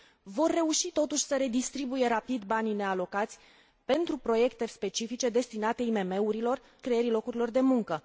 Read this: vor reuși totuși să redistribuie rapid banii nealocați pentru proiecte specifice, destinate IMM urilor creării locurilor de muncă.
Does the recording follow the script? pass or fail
pass